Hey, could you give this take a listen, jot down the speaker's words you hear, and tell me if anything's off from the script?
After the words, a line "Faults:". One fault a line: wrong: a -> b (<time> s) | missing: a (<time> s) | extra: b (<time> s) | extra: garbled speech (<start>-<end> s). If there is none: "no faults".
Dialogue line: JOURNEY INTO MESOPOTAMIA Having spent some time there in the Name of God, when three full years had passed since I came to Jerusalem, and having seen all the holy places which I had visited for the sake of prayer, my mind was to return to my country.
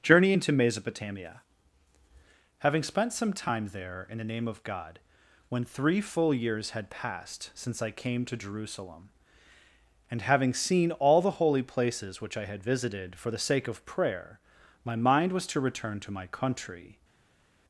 JOURNEY INTO MESOPOTAMIA Having spent some time there in the Name of God, when three full years had passed since I came to Jerusalem, and having seen all the holy places which I had visited for the sake of prayer, my mind was to return to my country.
Faults:
no faults